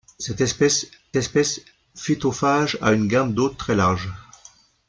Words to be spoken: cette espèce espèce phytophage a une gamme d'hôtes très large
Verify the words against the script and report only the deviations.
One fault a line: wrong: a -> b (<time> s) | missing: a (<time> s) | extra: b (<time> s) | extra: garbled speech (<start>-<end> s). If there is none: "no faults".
no faults